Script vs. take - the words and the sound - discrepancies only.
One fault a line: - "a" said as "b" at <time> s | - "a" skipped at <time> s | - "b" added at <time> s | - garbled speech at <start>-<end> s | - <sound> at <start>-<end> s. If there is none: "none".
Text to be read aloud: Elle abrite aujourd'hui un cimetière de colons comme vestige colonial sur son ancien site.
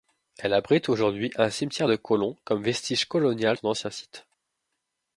- "sur" skipped at 3.6 s